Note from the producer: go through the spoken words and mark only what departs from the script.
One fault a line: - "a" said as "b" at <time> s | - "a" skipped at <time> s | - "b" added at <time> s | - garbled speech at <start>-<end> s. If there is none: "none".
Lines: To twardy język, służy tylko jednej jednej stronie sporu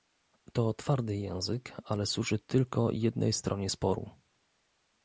- "ale" added at 1.8 s
- "jednej" skipped at 3.3 s